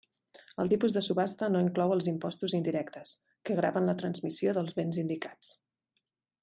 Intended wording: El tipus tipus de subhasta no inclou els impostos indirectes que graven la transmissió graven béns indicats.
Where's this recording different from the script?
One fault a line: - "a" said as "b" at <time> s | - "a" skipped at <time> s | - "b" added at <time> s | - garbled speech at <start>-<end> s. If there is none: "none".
- "tipus" skipped at 0.9 s
- "graven" said as "dels" at 4.6 s